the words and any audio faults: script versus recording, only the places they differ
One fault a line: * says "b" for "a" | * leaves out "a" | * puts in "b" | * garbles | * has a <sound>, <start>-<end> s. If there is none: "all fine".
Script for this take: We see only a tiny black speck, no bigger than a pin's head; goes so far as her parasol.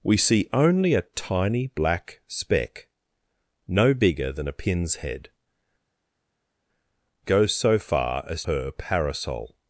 all fine